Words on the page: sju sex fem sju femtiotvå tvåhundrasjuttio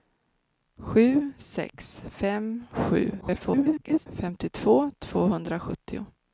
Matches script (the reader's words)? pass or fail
fail